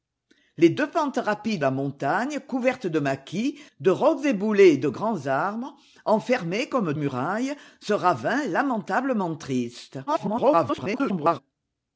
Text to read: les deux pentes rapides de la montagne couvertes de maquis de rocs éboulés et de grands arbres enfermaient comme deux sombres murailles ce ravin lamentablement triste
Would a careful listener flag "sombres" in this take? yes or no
yes